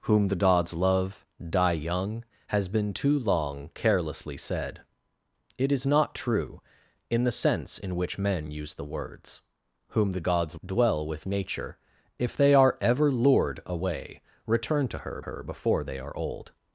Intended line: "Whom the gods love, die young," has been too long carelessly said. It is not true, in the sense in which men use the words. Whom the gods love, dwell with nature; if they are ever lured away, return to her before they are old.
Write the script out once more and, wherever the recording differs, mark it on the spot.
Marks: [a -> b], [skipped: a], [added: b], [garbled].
"Whom the gods love, die young," has been too long carelessly said. It is not true, in the sense in which men use the words. Whom the gods [skipped: love,] dwell with nature; if they are ever lured away, return to her [added: her] before they are old.